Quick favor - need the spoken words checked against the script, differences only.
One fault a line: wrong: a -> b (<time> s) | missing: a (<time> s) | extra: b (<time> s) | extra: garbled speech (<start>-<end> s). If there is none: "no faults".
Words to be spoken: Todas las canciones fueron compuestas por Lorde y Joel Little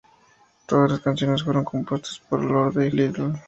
missing: Joel (2.9 s)